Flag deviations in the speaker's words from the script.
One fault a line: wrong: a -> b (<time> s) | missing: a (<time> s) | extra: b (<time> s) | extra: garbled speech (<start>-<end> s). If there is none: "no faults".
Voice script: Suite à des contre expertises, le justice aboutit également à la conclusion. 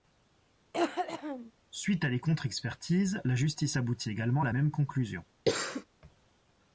wrong: le -> la (3.2 s)
extra: même (4.5 s)